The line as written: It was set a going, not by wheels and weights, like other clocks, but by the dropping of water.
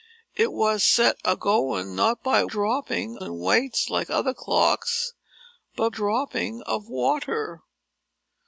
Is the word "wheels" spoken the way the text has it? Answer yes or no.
no